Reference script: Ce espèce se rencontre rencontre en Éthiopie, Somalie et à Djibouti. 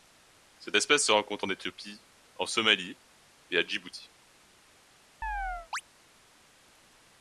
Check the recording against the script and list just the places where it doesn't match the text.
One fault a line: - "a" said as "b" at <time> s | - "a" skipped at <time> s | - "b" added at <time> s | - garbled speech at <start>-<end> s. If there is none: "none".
- "Ce" said as "Cette" at 0.6 s
- "rencontre" skipped at 1.5 s
- "en" added at 2.3 s